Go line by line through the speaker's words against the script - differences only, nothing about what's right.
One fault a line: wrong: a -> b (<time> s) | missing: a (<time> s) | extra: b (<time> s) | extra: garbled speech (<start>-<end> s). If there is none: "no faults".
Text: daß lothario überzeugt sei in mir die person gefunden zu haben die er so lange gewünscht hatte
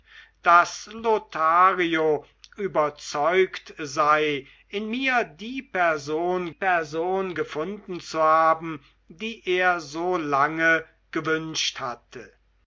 extra: person (6.5 s)